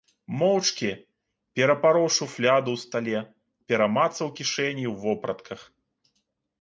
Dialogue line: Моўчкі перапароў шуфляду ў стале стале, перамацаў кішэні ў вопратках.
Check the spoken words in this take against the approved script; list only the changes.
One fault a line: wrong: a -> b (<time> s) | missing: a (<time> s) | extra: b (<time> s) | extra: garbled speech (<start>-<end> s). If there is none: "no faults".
missing: стале (3.2 s)